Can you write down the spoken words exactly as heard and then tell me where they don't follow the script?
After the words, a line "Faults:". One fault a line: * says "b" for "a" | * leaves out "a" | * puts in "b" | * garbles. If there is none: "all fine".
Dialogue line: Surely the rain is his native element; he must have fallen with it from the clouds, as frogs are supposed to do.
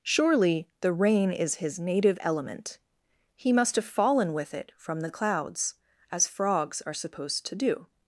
Surely the rain is his native element; he must have fallen with it from the clouds, as frogs are supposed to do.
Faults:
all fine